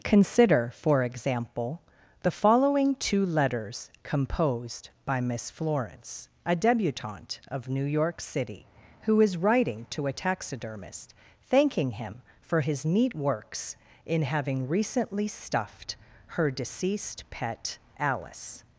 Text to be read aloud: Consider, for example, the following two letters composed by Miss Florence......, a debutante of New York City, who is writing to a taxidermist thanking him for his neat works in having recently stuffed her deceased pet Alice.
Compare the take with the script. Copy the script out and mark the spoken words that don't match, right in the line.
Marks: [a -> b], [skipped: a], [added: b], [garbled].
Consider, for example, the following two letters composed by Miss Florence......, a debutante of New York City, who is writing to a taxidermist thanking him for his neat works in having recently stuffed her deceased pet Alice.